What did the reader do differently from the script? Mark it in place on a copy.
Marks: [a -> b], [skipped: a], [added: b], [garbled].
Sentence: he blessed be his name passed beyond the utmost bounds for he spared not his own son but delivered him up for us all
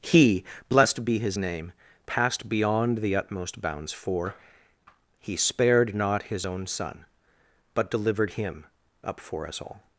he blessed be his name passed beyond the utmost bounds for he spared not his own son but delivered him up for us all